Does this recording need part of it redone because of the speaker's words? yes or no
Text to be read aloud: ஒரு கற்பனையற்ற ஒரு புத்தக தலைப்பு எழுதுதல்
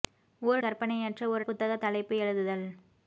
no